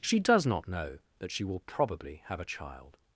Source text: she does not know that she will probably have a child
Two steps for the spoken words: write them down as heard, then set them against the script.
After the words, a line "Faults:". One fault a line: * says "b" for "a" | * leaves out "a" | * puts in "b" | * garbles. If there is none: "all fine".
she does not know that she will probably have a child
Faults:
all fine